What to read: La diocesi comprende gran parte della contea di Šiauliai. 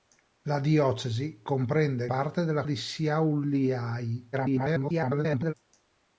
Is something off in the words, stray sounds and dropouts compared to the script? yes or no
yes